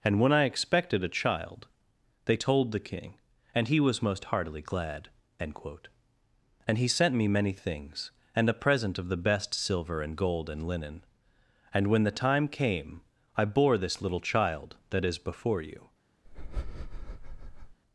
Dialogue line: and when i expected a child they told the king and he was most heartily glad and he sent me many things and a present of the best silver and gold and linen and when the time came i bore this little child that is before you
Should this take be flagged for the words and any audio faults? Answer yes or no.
yes